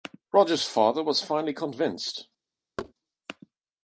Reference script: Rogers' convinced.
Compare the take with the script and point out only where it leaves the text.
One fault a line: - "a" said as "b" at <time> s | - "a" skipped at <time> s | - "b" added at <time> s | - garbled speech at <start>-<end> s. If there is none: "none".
- "father was finally" added at 0.7 s